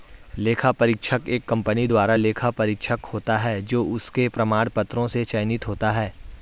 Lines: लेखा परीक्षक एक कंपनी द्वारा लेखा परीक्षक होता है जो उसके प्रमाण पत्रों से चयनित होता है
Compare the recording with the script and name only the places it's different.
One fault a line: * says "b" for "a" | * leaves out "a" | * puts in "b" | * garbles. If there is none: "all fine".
all fine